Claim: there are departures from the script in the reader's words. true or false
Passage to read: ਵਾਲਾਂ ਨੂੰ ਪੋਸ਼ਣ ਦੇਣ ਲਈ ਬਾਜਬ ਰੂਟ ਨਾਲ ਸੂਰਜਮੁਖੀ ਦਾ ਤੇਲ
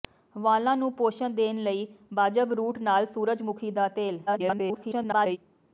true